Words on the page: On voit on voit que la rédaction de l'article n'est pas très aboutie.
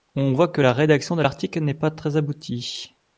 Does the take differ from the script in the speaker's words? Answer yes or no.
yes